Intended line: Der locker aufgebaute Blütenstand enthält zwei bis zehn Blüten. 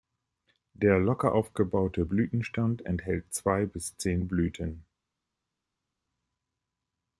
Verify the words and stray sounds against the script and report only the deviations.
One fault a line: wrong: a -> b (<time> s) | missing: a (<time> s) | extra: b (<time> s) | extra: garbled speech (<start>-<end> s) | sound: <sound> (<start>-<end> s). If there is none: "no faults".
no faults